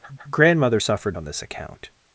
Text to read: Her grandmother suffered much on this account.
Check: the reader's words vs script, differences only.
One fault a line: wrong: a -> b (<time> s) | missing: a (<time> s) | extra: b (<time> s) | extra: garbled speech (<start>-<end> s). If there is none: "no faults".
extra: her (0.2 s)
missing: much (1.2 s)